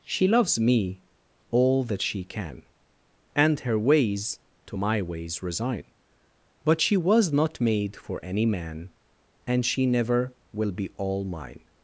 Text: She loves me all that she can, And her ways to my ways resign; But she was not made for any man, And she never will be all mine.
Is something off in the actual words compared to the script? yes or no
no